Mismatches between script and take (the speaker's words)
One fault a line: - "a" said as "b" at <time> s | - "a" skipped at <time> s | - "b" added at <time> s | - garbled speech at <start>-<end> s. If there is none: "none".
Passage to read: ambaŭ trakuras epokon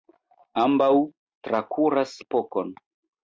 none